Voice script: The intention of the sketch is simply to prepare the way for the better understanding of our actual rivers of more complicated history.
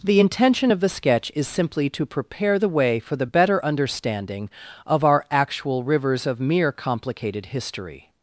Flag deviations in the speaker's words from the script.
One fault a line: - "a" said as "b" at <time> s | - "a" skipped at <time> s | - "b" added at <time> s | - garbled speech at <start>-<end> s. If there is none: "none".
- "more" said as "mere" at 6.4 s